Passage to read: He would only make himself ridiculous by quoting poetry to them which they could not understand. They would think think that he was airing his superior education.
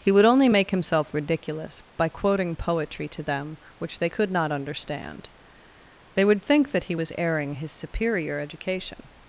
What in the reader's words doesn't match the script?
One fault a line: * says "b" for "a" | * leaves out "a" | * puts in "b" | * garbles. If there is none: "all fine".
* leaves out "think"